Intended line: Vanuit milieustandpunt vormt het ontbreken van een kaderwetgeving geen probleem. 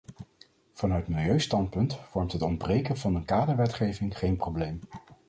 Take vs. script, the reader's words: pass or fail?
pass